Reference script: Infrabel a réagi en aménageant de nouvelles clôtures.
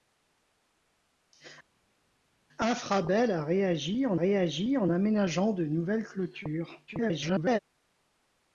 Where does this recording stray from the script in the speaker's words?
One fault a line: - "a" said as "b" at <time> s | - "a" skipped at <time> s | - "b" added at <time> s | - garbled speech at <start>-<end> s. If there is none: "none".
- "réagi en" added at 4.2 s
- garbled speech at 6.9-7.6 s